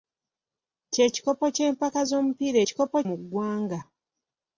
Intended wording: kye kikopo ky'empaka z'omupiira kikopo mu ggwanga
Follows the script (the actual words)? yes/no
yes